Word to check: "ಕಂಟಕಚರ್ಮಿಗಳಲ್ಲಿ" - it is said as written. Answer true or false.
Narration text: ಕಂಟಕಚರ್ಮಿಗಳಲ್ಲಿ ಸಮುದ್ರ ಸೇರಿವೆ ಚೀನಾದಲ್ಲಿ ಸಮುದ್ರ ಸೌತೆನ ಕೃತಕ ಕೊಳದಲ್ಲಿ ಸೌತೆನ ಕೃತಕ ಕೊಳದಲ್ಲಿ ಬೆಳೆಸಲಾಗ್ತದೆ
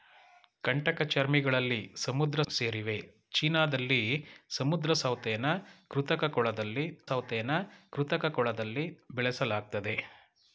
true